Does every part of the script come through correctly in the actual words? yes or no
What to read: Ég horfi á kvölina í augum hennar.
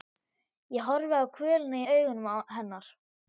yes